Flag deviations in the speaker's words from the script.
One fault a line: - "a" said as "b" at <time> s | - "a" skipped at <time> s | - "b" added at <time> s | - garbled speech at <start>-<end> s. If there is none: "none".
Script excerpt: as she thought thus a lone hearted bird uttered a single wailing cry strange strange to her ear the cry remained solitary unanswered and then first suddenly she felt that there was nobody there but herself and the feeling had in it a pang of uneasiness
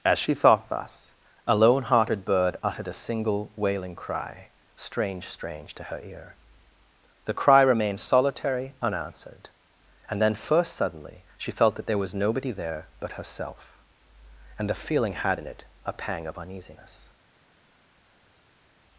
none